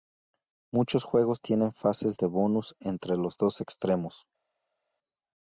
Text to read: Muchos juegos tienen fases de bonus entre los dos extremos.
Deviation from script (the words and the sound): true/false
false